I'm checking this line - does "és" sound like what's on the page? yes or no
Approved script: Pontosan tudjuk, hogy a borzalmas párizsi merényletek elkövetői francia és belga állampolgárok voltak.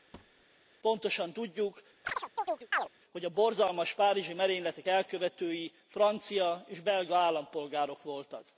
yes